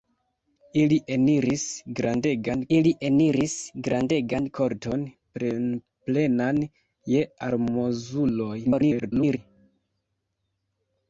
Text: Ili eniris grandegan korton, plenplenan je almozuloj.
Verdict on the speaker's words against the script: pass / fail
fail